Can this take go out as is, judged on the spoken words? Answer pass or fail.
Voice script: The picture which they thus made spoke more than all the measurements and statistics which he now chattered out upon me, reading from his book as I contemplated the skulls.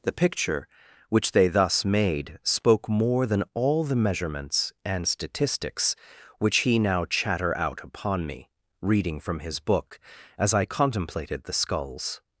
fail